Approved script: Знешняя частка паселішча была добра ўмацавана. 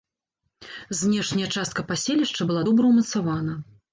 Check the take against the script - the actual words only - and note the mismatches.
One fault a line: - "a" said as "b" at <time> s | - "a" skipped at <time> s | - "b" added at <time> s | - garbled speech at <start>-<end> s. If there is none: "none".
none